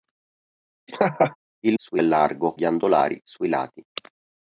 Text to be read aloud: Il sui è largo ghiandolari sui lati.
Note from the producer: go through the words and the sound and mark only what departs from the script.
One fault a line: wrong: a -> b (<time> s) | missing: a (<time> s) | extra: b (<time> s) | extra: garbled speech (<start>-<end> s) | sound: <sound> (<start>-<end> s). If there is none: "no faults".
sound: laugh (0.9-1.4 s)